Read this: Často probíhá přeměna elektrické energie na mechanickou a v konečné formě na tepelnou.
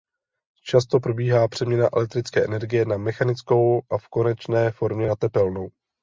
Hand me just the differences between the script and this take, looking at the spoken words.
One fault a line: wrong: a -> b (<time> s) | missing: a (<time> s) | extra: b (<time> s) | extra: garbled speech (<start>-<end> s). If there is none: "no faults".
no faults